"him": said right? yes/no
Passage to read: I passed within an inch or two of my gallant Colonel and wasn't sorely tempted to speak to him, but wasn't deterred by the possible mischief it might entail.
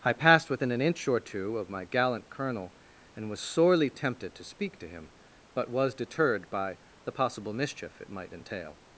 yes